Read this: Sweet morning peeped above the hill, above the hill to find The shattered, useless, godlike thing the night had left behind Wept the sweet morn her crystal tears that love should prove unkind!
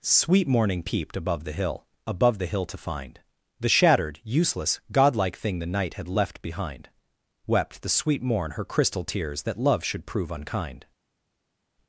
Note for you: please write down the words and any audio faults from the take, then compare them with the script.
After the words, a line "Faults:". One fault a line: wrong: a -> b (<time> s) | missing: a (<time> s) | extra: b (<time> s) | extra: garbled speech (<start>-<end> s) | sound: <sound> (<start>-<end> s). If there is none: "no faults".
Sweet morning peeped above the hill, above the hill to find The shattered, useless, godlike thing the night had left behind Wept the sweet morn her crystal tears that love should prove unkind!
Faults:
no faults